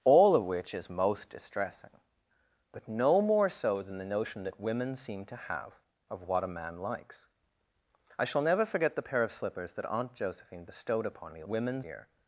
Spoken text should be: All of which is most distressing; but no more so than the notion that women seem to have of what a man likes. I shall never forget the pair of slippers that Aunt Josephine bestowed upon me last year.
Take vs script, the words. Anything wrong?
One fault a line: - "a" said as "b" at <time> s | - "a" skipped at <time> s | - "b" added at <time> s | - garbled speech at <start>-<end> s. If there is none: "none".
- "last" said as "women" at 11.5 s